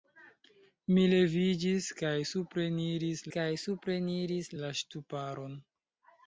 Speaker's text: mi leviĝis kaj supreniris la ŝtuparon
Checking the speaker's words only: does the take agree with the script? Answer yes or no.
no